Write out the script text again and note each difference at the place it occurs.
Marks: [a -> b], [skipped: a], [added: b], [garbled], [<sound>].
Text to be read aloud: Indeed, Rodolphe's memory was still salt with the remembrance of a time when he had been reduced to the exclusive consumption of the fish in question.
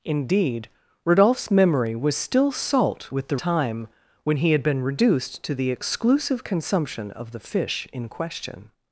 Indeed, Rodolphe's memory was still salt with the [skipped: remembrance of a] time when he had been reduced to the exclusive consumption of the fish in question.